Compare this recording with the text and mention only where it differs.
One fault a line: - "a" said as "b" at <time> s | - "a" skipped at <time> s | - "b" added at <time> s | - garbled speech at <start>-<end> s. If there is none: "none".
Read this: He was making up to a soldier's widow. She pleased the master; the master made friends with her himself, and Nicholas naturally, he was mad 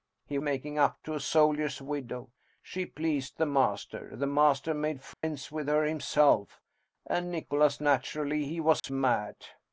- "was" skipped at 0.4 s